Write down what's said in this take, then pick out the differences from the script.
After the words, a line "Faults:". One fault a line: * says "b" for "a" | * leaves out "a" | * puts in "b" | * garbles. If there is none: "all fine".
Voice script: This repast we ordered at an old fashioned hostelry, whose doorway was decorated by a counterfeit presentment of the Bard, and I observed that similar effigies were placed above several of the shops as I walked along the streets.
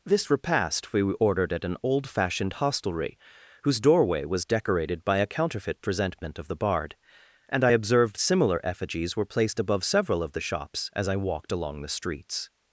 This repast we ordered at an old fashioned hostelry, whose doorway was decorated by a counterfeit presentment of the Bard, and I observed similar effigies were placed above several of the shops as I walked along the streets.
Faults:
* leaves out "that"